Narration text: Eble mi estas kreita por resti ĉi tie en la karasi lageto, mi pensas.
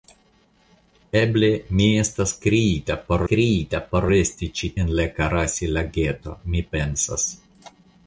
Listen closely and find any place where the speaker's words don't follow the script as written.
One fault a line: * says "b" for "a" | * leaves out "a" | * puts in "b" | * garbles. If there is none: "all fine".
* puts in "kreita por"
* leaves out "tie"